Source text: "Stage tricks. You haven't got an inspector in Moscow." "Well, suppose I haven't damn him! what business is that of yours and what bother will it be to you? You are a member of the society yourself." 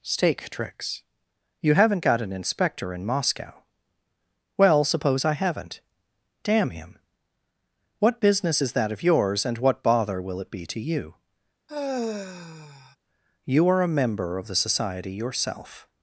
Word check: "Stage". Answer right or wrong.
wrong